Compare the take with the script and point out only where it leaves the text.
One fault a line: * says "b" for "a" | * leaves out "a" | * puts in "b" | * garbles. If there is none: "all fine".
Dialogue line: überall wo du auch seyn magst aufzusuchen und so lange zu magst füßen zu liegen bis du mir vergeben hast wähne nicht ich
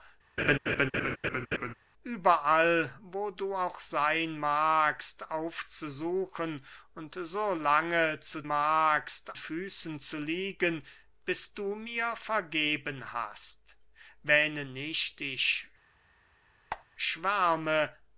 all fine